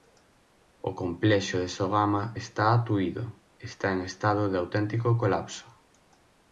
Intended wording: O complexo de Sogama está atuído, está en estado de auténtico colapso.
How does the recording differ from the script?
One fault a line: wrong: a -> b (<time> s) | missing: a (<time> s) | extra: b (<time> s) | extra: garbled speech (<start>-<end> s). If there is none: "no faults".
no faults